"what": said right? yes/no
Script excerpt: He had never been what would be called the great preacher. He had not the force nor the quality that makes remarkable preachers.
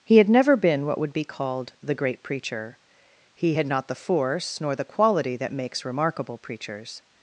yes